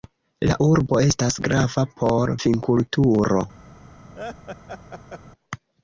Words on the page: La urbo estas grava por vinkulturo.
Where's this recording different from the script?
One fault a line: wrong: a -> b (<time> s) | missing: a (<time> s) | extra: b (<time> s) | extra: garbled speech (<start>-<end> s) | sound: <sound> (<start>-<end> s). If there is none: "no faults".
sound: laugh (4.2-5.2 s)